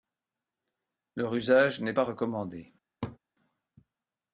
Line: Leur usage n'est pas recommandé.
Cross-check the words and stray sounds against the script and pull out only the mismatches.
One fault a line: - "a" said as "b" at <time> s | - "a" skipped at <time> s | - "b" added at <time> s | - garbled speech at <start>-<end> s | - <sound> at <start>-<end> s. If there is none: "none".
- laugh at 3.0-3.2 s